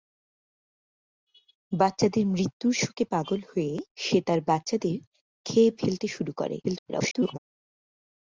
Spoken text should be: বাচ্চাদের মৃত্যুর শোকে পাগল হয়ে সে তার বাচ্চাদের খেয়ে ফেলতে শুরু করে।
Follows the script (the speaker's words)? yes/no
no